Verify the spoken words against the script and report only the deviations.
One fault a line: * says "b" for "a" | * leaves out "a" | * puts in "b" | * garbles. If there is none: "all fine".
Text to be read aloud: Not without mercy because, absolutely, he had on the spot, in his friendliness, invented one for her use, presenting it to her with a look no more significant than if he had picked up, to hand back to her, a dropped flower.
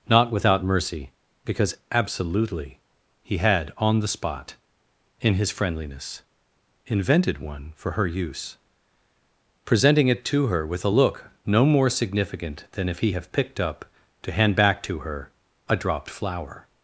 * says "have" for "had"